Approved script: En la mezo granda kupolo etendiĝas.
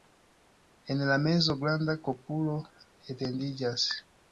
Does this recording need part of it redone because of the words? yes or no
no